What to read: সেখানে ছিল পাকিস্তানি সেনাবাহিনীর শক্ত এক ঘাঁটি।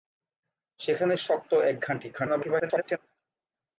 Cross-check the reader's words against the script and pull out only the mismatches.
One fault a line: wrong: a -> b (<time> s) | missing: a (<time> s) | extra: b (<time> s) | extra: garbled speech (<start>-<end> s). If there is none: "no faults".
missing: ছিল পাকিস্তানি সেনাবাহিনীর (1.1 s)
extra: garbled speech (2.1-3.0 s)